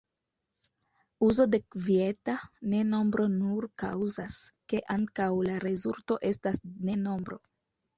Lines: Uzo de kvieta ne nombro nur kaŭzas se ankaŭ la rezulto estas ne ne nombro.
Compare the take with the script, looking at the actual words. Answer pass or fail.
fail